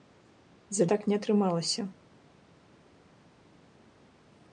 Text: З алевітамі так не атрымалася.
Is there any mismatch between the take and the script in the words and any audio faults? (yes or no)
yes